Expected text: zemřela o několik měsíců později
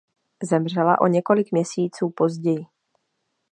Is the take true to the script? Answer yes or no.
yes